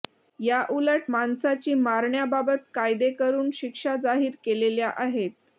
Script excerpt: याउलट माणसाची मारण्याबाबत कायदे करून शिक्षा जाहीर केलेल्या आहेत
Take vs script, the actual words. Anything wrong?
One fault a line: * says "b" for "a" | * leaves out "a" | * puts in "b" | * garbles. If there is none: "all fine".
all fine